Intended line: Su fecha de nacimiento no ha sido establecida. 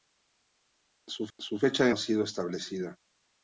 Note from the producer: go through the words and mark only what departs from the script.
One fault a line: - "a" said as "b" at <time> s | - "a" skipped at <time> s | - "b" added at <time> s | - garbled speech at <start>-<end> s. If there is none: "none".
- "su" added at 1.4 s
- "nacimiento no" skipped at 1.9 s